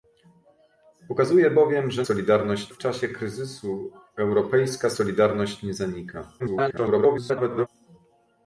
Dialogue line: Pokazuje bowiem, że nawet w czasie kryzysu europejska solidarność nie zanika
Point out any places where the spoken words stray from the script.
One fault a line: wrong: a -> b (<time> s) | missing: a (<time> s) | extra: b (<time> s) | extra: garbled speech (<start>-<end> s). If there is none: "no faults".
wrong: nawet -> solidarność (2.0 s)
extra: garbled speech (6.4-7.7 s)